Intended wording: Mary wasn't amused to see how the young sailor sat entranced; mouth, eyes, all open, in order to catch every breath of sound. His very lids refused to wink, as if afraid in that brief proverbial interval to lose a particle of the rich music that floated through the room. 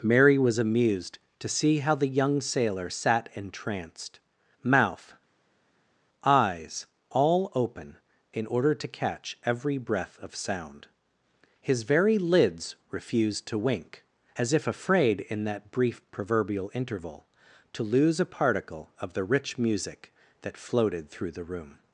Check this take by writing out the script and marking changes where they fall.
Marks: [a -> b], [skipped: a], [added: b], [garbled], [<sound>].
Mary [wasn't -> was] amused to see how the young sailor sat entranced; mouth, eyes, all open, in order to catch every breath of sound. His very lids refused to wink, as if afraid in that brief proverbial interval to lose a particle of the rich music that floated through the room.